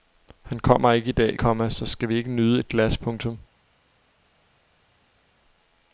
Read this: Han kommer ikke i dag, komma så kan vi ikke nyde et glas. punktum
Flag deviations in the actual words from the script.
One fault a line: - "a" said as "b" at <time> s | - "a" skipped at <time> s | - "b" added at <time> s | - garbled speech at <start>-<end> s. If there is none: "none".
- "kan" said as "skal" at 1.8 s